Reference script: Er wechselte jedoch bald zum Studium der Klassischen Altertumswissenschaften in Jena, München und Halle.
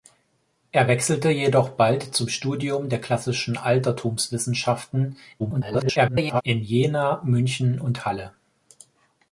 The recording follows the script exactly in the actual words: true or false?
false